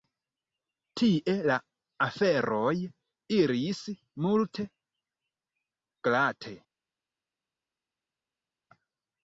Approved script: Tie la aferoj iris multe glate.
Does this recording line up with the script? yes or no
yes